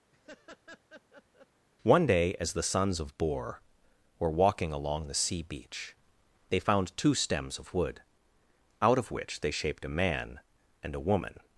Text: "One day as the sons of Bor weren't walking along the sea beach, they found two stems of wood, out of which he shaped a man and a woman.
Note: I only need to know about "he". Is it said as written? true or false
false